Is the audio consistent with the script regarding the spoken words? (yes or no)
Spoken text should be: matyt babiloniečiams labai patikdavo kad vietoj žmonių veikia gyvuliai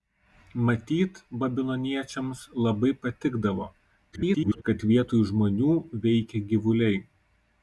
no